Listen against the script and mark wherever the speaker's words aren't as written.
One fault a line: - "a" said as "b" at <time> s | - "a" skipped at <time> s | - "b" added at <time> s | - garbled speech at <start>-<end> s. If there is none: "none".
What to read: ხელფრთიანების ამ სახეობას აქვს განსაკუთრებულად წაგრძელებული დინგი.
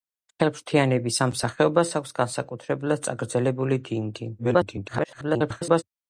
- garbled speech at 4.4-5.8 s